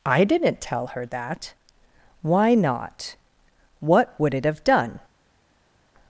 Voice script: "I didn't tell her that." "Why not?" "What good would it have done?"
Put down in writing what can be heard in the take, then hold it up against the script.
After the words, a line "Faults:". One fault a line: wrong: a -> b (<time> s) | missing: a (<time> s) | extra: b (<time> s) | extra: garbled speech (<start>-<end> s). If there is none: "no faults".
"I didn't tell her that." "Why not?" "What would it have done?"
Faults:
missing: good (4.2 s)